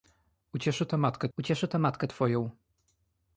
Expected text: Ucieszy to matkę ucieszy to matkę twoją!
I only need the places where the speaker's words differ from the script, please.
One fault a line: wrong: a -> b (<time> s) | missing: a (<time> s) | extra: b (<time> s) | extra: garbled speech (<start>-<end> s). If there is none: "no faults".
no faults